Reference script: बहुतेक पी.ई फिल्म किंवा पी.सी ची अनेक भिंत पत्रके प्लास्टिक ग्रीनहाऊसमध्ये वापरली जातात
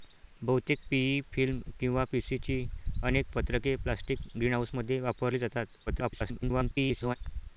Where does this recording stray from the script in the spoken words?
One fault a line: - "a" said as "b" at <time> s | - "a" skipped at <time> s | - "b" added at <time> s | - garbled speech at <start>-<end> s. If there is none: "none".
- "भिंत" skipped at 3.4 s
- garbled speech at 5.9-7.2 s